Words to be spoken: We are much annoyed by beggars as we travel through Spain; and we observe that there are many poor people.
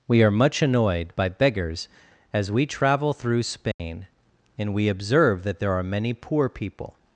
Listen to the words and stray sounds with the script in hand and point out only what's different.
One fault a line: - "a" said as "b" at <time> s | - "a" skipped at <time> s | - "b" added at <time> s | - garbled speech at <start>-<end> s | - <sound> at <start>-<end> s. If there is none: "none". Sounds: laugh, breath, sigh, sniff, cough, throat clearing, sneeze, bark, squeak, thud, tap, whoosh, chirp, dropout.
- dropout at 3.7-3.8 s